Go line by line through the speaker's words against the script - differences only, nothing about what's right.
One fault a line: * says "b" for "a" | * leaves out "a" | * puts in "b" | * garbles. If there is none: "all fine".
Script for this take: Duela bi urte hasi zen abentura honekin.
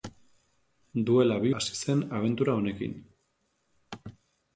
* leaves out "urte"